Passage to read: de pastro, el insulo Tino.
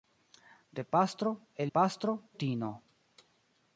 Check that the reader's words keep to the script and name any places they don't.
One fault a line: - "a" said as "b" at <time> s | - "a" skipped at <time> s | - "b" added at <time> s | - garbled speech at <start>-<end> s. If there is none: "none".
- "insulo" said as "pastro" at 1.7 s